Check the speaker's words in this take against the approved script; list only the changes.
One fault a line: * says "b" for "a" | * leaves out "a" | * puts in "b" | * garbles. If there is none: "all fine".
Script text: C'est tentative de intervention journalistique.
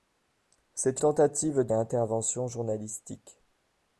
all fine